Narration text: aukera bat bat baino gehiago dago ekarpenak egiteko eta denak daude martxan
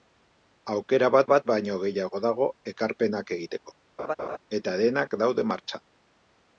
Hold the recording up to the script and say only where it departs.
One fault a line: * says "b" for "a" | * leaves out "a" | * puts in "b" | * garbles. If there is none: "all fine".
all fine